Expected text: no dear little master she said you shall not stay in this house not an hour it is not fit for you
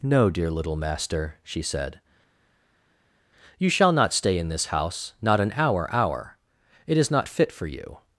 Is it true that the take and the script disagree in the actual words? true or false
true